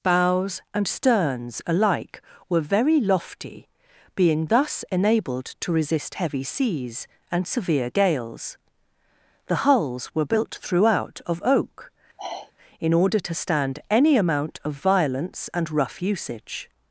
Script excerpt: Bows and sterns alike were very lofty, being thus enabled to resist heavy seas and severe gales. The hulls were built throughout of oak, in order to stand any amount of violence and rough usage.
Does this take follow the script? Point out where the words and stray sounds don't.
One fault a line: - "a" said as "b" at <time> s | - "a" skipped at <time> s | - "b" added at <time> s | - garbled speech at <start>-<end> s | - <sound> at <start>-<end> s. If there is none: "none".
- sigh at 12.2-12.5 s